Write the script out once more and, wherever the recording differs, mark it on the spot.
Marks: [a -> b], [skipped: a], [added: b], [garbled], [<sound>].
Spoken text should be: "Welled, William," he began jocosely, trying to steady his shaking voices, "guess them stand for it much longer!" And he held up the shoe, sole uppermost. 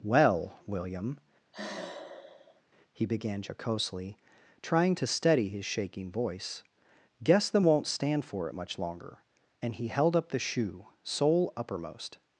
["Welled, -> Well] William," [sigh] he began jocosely, trying to steady his shaking [voices, -> voice] "guess them [added: won't] stand for it much longer!" And he held up the shoe, sole uppermost.